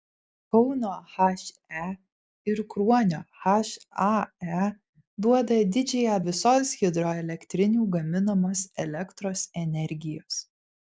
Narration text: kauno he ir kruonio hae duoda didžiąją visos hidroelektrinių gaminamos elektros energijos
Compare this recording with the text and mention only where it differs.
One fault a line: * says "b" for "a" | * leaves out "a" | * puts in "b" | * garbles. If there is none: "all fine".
all fine